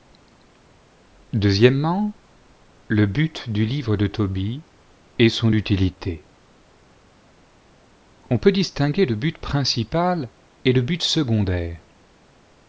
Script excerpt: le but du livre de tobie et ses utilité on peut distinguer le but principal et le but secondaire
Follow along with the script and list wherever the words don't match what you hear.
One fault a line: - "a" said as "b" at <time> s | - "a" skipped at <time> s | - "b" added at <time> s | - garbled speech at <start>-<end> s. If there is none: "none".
- "ses" said as "son" at 5.3 s